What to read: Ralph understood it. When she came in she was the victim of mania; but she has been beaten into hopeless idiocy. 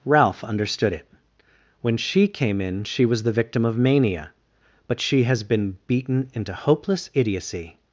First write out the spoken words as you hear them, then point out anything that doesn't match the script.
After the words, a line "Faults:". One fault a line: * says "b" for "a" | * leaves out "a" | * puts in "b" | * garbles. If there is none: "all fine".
Ralph understood it. When she came in she was the victim of mania; but she has been beaten into hopeless idiocy.
Faults:
all fine